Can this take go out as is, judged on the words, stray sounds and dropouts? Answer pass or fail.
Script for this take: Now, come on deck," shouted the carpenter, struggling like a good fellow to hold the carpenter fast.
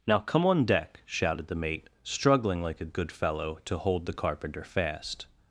fail